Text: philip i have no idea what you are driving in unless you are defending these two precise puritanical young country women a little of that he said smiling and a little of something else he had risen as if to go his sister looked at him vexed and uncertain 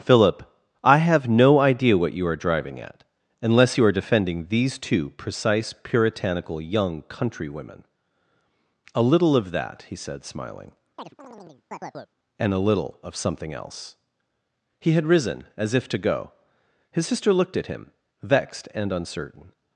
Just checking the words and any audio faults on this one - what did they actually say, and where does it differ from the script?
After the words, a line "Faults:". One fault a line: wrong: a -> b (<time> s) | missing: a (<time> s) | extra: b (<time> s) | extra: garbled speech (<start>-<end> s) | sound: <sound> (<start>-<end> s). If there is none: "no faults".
philip i have no idea what you are driving at unless you are defending these two precise puritanical young country women a little of that he said smiling and a little of something else he had risen as if to go his sister looked at him vexed and uncertain
Faults:
wrong: in -> at (2.8 s)
sound: chirp (11.0-12.1 s)